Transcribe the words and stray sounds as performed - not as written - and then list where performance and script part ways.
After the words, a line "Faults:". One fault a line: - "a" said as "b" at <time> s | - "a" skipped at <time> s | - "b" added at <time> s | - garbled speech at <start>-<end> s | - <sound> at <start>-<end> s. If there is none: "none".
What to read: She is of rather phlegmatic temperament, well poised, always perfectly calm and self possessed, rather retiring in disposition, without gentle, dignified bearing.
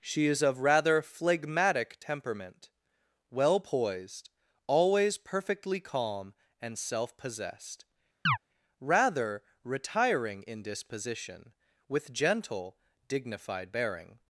She is of rather phlegmatic temperament, well poised, always perfectly calm and self possessed, rather retiring in disposition, with gentle, dignified bearing.
Faults:
- chirp at 8.3-8.4 s
- "without" said as "with" at 11.9 s